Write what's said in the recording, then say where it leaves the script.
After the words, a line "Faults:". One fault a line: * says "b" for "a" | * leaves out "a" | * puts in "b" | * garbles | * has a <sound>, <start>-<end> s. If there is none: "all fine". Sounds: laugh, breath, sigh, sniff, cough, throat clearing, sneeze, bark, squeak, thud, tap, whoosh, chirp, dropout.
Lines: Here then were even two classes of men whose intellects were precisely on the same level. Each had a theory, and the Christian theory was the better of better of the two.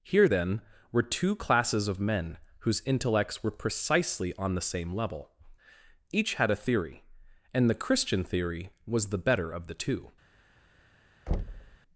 Here then were two classes of men whose intellects were precisely on the same level. Each had a theory, and the Christian theory was the better of the two.
Faults:
* leaves out "even"
* leaves out "better of"
* has a thud, 11.3-11.8 s